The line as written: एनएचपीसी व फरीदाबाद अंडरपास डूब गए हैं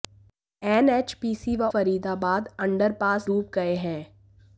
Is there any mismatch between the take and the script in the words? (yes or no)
no